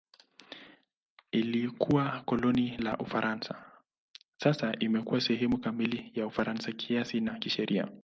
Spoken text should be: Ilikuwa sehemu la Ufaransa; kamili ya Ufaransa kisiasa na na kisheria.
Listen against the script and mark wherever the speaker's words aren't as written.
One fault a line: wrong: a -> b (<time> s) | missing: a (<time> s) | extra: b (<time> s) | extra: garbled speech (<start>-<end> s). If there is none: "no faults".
wrong: sehemu -> koloni (2.3 s)
extra: sasa imekuwa sehemu (4.4 s)
missing: na (7.4 s)